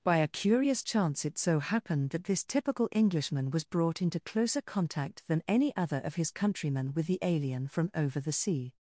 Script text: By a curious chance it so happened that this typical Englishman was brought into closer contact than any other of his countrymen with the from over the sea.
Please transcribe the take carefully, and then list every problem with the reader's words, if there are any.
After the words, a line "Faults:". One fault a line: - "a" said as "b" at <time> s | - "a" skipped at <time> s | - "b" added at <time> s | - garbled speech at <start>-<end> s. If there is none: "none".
By a curious chance it so happened that this typical Englishman was brought into closer contact than any other of his countrymen with the alien from over the sea.
Faults:
- "alien" added at 7.2 s